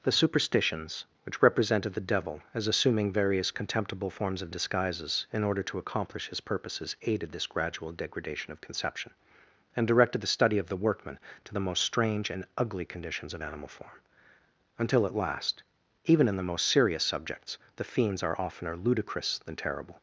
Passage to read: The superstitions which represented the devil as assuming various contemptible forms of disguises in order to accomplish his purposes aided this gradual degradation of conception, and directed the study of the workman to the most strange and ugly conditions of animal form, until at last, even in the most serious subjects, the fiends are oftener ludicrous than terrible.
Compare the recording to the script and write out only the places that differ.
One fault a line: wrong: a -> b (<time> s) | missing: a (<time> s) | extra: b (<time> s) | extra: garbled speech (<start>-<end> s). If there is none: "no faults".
no faults